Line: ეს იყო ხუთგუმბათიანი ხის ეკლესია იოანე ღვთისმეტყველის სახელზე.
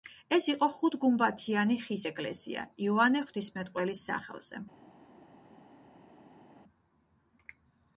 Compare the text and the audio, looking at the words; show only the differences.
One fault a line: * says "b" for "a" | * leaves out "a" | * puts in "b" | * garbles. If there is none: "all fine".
all fine